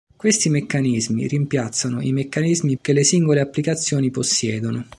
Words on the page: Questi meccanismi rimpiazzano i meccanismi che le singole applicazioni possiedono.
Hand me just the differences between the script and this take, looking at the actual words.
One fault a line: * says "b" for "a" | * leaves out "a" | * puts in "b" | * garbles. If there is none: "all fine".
all fine